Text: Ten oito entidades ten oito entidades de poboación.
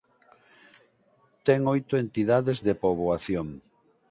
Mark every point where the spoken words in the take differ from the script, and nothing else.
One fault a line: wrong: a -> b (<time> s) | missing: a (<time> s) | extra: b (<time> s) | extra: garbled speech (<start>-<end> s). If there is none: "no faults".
missing: ten oito entidades (2.6 s)